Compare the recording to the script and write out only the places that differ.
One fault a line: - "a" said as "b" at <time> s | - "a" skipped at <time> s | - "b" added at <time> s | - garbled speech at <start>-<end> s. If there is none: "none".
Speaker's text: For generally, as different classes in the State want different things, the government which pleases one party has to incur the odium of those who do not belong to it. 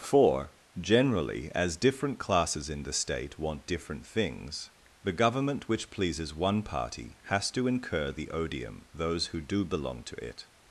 - "of" skipped at 8.9 s
- "not" skipped at 9.6 s